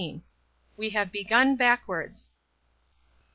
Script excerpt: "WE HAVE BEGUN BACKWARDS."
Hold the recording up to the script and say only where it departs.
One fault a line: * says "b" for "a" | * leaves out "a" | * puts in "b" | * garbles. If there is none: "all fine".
all fine